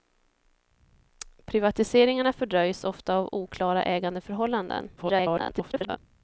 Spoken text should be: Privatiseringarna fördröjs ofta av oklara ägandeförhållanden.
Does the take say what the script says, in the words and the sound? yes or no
no